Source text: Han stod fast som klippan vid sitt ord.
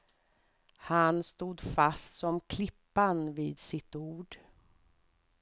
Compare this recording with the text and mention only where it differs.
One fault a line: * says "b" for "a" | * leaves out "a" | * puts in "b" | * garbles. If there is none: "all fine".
all fine